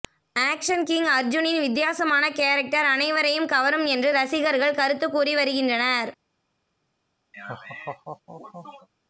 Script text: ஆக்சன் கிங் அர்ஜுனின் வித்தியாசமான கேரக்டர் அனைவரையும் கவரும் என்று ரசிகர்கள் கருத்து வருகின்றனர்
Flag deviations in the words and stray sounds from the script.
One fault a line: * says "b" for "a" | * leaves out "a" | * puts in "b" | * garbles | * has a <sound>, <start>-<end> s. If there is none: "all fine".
* puts in "கூறி"
* has a laugh, 7.3-8.9 s